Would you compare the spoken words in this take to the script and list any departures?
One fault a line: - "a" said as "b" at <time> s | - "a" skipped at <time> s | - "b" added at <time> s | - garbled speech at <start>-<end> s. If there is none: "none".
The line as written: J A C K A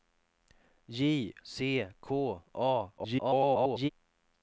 - "A" skipped at 1.4 s
- garbled speech at 3.0-3.9 s